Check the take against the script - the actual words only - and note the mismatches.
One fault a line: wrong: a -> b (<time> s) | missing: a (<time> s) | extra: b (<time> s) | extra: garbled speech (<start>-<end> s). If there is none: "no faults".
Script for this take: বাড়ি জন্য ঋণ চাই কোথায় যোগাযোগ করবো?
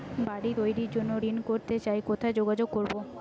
extra: তৈরির (0.6 s)
extra: করতে (1.5 s)